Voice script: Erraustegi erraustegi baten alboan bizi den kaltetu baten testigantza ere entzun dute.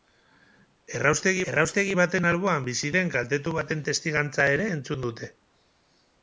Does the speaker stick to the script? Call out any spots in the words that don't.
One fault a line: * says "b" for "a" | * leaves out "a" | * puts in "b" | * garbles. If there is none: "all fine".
all fine